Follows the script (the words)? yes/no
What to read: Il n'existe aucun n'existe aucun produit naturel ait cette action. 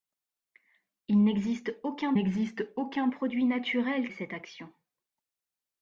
yes